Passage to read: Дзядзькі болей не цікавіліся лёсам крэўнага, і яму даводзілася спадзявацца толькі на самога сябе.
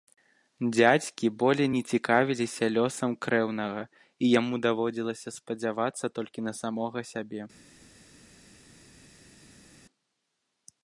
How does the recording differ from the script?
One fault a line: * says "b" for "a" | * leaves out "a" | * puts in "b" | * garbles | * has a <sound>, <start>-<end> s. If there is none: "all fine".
all fine